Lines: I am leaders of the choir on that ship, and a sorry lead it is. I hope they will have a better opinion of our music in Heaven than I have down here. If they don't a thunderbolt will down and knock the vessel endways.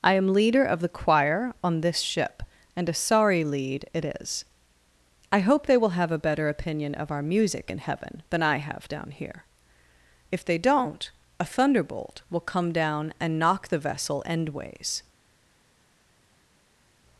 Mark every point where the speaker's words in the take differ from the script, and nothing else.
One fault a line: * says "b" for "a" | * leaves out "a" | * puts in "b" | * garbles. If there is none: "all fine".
* says "leader" for "leaders"
* says "this" for "that"
* puts in "come"